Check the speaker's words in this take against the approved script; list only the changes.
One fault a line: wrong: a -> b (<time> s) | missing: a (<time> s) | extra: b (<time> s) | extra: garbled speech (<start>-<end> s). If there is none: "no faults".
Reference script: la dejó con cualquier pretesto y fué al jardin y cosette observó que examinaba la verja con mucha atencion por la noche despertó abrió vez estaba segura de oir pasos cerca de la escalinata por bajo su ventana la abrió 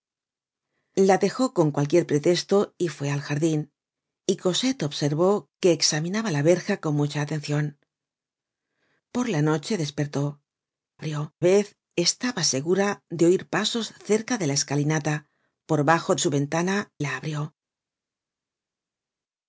no faults